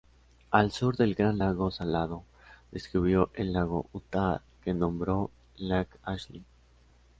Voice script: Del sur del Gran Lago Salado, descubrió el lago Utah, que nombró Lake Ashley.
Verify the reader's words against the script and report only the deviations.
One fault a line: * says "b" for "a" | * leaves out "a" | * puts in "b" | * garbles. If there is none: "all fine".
* says "Al" for "Del"